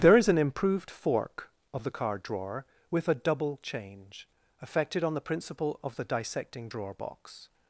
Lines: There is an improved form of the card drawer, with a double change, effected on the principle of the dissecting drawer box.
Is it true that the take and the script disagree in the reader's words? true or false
true